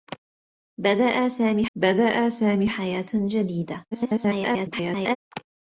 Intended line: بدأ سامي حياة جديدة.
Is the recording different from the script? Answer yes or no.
yes